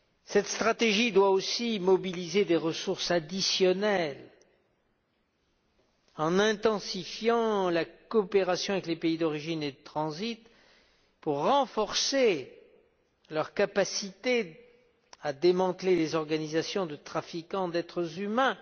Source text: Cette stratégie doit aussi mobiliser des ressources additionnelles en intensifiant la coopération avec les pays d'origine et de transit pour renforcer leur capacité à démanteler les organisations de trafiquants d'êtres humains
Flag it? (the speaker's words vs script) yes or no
no